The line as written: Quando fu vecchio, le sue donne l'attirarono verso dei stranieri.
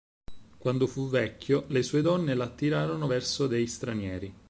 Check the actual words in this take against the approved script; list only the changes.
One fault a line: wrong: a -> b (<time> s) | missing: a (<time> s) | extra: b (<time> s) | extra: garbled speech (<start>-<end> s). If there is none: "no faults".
no faults